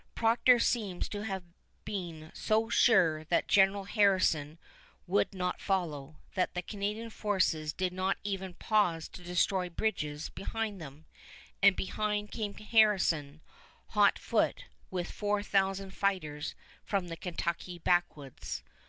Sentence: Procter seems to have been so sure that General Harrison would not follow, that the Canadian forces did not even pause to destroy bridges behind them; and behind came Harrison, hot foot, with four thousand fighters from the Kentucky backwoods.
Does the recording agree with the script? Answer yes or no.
yes